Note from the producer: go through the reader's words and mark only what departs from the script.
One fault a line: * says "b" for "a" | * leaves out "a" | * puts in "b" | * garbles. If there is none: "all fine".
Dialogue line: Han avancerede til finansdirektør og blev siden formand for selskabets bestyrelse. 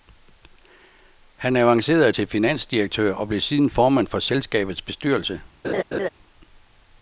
all fine